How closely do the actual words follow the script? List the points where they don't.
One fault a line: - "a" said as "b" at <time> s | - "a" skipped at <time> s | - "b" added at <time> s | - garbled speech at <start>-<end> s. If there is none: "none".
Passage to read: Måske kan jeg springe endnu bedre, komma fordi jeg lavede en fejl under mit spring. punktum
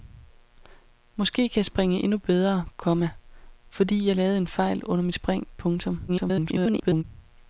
- garbled speech at 6.1-7.0 s